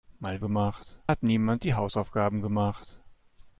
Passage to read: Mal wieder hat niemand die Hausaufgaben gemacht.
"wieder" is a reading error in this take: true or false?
true